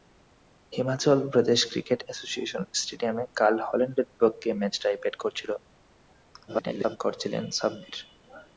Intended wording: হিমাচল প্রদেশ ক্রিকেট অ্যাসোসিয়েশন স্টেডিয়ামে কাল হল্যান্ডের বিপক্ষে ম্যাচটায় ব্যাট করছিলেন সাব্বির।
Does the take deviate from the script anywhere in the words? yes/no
yes